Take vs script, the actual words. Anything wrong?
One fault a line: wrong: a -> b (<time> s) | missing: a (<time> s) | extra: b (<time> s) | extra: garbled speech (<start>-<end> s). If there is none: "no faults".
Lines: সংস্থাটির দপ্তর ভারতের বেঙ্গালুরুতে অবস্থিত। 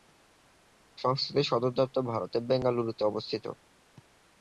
extra: সদর (1.5 s)